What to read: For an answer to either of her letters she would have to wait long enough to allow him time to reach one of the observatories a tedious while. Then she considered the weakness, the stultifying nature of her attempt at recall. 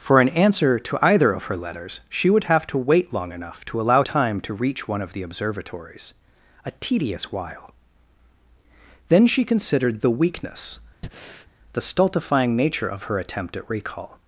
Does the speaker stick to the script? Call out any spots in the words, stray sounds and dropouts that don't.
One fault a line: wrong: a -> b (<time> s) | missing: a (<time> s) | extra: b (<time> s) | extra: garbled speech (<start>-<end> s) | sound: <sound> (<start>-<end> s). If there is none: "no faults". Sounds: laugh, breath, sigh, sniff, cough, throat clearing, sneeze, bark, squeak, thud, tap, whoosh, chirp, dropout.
missing: him (4.0 s)
sound: breath (11.0-11.5 s)